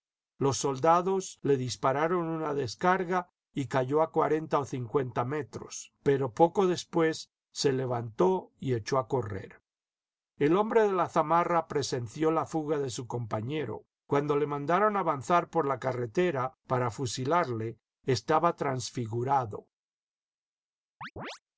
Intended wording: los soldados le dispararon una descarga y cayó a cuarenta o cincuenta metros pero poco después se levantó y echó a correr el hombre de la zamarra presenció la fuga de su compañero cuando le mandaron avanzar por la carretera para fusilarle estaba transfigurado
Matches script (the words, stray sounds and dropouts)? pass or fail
fail